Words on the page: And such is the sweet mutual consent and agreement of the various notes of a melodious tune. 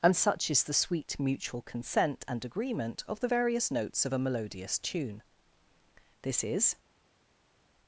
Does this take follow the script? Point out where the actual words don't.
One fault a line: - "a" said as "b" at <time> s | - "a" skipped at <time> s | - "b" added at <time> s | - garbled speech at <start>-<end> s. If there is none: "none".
- "This is" added at 6.2 s